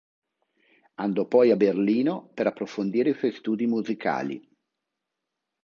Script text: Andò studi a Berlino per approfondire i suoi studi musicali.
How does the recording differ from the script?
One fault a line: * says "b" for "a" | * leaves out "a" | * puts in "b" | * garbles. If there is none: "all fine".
* says "poi" for "studi"